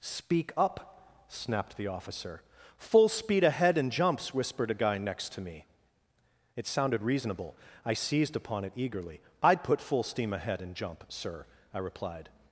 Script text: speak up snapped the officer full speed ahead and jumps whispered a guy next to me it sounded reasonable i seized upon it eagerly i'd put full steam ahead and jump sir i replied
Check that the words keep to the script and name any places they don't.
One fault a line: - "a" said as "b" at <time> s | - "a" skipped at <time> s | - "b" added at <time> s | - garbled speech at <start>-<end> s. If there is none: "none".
none